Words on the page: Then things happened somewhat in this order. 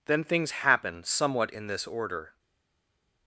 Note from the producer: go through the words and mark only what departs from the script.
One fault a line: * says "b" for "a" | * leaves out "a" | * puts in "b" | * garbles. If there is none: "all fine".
* says "happen" for "happened"